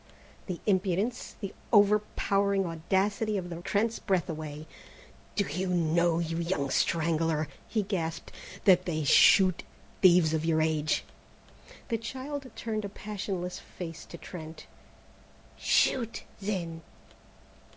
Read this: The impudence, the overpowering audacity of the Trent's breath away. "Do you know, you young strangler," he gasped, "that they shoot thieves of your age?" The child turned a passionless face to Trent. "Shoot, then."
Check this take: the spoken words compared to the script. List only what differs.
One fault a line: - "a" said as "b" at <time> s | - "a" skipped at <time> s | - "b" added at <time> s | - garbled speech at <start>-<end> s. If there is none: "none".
none